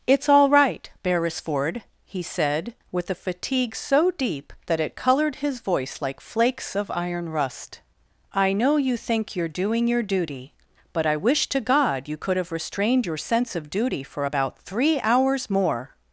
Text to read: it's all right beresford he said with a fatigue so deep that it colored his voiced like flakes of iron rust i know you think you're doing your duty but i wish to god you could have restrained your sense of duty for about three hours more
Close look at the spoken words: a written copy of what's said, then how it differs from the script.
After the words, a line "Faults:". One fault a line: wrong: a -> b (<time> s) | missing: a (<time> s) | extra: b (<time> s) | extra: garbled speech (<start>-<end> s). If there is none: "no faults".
it's all right beresford he said with a fatigue so deep that it colored his voice like flakes of iron rust i know you think you're doing your duty but i wish to god you could have restrained your sense of duty for about three hours more
Faults:
wrong: voiced -> voice (5.6 s)